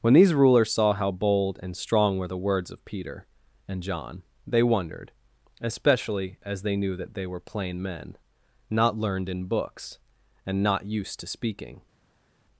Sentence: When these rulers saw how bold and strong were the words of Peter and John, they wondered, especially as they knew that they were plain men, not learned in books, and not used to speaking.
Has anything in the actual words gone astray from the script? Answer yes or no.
no